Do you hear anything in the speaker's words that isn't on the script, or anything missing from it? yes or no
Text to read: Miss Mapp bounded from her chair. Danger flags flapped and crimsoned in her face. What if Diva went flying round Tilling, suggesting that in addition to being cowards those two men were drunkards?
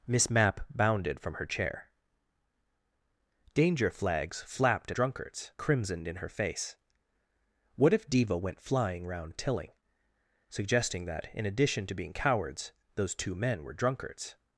yes